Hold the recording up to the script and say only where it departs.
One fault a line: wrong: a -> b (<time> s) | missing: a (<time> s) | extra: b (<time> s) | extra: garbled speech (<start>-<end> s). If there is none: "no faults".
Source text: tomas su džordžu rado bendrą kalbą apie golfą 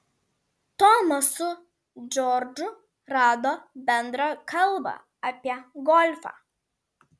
no faults